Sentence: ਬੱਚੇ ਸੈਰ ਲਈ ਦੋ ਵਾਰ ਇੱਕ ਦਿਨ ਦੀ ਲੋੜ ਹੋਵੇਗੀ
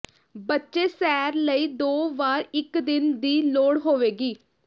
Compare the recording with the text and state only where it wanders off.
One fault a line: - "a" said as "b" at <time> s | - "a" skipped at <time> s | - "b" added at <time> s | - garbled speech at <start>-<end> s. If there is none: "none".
none